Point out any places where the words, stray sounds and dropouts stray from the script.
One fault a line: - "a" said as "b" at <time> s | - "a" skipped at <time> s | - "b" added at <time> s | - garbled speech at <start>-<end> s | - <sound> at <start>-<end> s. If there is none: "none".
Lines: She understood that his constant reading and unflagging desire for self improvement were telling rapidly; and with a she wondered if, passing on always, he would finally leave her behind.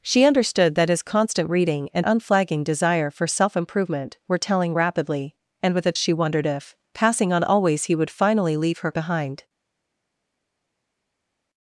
none